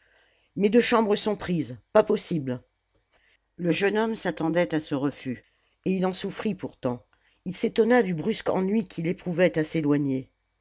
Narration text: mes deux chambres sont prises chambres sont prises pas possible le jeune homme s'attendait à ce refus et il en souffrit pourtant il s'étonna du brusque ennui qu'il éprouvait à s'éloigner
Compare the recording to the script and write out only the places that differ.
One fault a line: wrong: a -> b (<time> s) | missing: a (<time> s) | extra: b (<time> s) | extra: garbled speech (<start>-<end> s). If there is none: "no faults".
missing: chambres sont prises (1.8 s)